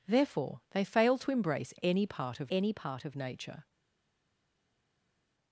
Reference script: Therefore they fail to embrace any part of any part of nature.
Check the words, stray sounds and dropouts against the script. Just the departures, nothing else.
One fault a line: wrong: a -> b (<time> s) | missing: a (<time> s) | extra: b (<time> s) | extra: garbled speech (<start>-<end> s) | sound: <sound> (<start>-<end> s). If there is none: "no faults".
no faults